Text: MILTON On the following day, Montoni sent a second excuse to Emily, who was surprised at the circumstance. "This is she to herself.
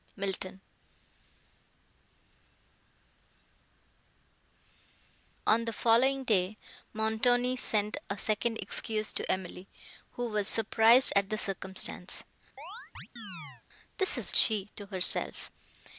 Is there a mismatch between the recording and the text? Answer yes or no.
no